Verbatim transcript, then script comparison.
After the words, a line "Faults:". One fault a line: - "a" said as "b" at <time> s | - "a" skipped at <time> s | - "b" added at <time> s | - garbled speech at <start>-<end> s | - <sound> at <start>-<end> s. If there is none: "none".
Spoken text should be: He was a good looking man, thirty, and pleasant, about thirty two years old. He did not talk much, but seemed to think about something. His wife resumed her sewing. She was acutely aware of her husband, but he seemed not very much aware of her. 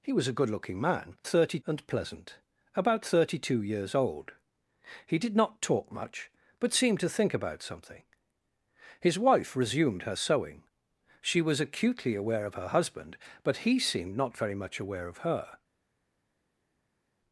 He was a good looking man, thirty, and pleasant, about thirty two years old. He did not talk much, but seemed to think about something. His wife resumed her sewing. She was acutely aware of her husband, but he seemed not very much aware of her.
Faults:
none